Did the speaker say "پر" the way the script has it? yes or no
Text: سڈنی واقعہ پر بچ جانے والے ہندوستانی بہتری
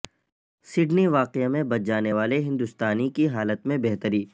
no